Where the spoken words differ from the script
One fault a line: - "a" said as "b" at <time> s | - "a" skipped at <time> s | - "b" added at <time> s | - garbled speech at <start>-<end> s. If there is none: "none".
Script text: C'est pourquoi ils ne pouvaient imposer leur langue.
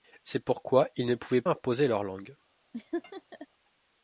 none